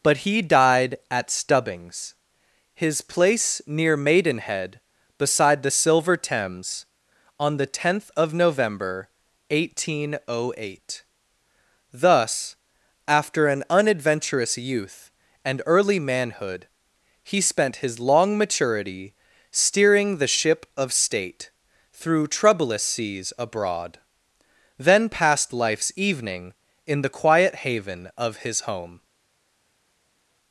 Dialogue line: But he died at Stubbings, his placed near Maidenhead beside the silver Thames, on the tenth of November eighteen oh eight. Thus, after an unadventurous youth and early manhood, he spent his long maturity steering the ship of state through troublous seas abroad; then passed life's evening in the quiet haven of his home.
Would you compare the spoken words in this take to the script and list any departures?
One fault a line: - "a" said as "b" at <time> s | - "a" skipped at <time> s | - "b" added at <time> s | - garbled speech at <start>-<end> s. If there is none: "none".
- "placed" said as "place" at 3.0 s